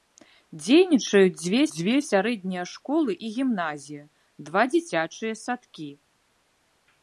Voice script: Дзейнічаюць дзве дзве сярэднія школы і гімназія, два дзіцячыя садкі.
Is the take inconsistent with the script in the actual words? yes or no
no